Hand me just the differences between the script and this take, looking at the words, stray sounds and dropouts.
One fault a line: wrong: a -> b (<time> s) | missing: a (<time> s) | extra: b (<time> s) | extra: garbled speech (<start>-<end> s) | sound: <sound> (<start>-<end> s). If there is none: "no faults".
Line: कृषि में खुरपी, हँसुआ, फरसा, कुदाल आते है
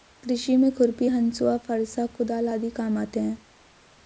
extra: आदि काम (2.5 s)